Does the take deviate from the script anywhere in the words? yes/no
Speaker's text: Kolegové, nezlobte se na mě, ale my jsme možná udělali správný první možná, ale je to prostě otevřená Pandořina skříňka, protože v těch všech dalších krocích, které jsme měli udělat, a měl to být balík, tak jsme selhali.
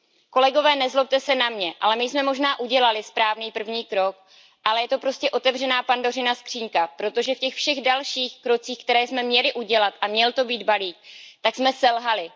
yes